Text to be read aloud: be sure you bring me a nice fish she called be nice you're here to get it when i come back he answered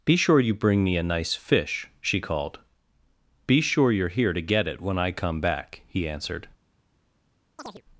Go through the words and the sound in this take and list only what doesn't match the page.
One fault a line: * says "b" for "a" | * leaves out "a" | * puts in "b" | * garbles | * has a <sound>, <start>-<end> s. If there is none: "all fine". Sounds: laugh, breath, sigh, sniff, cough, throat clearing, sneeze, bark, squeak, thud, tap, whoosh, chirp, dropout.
* says "sure" for "nice"
* has a chirp, 7.6-7.8 s